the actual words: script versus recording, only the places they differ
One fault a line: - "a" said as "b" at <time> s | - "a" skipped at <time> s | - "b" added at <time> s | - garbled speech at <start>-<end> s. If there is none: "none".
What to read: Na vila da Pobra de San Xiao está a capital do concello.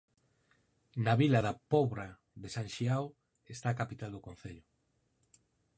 none